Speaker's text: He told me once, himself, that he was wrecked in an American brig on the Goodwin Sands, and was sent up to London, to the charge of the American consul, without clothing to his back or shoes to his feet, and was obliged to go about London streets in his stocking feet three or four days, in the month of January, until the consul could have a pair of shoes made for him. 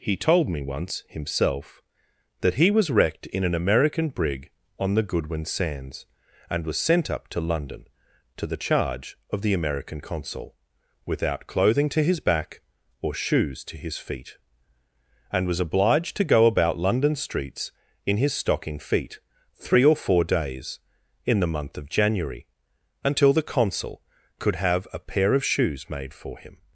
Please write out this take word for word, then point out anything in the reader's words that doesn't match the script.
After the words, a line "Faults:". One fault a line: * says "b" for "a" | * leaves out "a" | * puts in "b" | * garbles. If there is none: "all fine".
He told me once, himself, that he was wrecked in an American brig on the Goodwin Sands, and was sent up to London, to the charge of the American consul, without clothing to his back or shoes to his feet, and was obliged to go about London streets in his stocking feet three or four days, in the month of January, until the consul could have a pair of shoes made for him.
Faults:
all fine